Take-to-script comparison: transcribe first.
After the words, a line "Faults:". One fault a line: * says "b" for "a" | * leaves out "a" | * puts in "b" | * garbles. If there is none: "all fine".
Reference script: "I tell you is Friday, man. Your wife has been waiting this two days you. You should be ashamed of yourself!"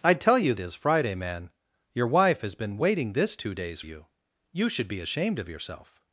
"I tell you is Friday, man. Your wife has been waiting this two days you. You should be ashamed of yourself!"
Faults:
all fine